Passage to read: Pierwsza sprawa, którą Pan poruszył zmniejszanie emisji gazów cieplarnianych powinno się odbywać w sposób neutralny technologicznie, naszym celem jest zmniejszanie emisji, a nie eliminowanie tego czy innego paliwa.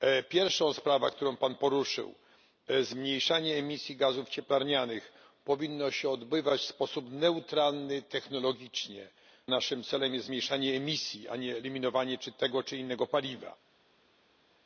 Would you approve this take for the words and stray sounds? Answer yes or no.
yes